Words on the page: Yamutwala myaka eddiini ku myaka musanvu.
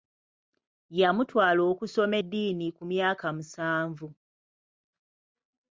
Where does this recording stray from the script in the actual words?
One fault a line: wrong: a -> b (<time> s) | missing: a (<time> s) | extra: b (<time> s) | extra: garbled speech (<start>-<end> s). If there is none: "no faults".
wrong: myaka -> okusoma (1.7 s)